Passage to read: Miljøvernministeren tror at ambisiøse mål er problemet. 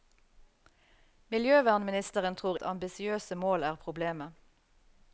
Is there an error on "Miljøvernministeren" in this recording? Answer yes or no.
no